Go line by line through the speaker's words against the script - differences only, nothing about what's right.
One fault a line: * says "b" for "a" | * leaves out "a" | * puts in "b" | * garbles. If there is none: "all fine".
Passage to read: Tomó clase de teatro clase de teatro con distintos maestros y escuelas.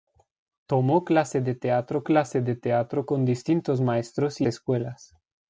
all fine